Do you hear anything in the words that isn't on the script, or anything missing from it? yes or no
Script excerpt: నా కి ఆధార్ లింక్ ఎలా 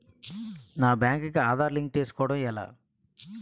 yes